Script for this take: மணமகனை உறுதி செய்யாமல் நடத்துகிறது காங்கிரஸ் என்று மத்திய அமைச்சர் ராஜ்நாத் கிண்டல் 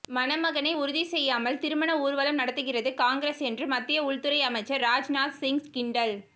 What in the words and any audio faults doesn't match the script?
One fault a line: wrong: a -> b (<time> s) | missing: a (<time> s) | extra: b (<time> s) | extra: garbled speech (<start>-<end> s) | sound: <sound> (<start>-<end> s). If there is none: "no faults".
extra: திருமண ஊர்வலம் (1.6 s)
extra: உள்துறை (4.0 s)
extra: சிங் (5.4 s)